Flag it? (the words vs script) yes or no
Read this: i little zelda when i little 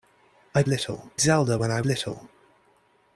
no